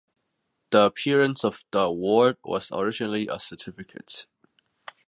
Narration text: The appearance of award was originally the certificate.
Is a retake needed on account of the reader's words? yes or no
yes